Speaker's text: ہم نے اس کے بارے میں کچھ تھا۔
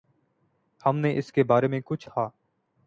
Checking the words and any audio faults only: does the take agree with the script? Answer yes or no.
yes